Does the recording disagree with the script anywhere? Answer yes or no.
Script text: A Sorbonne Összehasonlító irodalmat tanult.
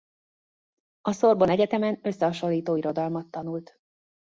yes